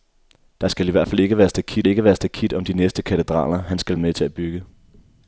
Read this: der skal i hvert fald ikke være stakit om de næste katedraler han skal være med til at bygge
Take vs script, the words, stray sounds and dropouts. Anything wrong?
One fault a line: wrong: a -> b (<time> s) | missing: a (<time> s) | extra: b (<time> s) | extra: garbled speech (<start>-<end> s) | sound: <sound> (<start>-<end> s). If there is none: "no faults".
extra: ikke være stakit (1.9 s)
missing: være (4.0 s)